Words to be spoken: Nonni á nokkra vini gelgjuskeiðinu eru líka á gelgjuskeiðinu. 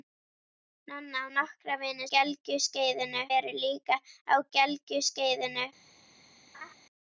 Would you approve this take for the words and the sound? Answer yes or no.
no